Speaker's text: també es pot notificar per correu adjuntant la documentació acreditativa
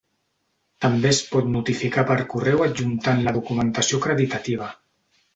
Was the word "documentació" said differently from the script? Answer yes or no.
no